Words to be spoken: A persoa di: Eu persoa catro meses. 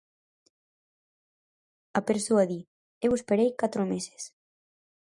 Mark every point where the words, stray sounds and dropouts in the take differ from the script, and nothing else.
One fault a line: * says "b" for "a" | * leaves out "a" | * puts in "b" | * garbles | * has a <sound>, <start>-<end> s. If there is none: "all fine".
* says "esperei" for "persoa"